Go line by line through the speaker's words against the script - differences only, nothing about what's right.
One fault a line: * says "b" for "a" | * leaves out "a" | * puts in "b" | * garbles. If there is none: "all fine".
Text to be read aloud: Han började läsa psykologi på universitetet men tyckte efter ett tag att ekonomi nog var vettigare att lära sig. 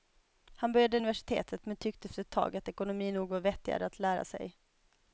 * leaves out "läsa psykologi på"